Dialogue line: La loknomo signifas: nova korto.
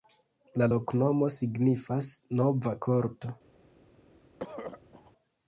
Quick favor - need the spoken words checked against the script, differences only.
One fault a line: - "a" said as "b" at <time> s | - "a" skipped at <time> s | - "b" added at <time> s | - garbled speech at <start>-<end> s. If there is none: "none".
none